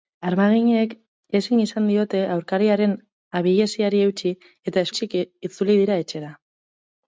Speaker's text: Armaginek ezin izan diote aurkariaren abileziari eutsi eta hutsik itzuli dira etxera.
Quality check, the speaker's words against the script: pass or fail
pass